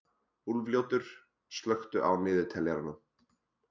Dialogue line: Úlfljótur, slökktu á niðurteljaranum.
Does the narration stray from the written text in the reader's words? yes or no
no